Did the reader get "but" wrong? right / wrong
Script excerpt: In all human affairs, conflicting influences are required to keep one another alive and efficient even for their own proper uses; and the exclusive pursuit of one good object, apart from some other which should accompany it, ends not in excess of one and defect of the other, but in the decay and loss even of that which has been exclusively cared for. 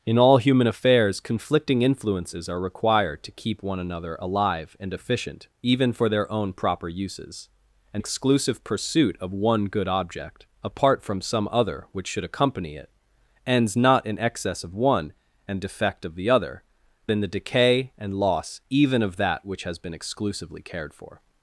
wrong